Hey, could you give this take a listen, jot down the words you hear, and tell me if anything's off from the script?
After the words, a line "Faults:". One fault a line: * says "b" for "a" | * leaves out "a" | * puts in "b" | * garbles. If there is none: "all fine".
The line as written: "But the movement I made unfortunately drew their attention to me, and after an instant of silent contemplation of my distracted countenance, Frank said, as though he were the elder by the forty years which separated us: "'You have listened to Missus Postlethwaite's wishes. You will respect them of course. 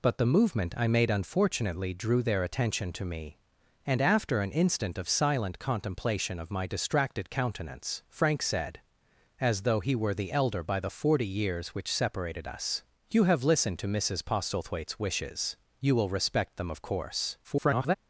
"But the movement I made unfortunately drew their attention to me, and after an instant of silent contemplation of my distracted countenance, Frank said, as though he were the elder by the forty years which separated us: "'You have listened to Missus Postlethwaite's wishes. You will respect them of course. [garbled]
Faults:
* garbles